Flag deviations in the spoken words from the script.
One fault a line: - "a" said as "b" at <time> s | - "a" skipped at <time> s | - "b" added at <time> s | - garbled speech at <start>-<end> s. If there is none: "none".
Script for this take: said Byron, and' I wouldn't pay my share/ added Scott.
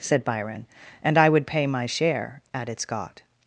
- "wouldn't" said as "would" at 1.3 s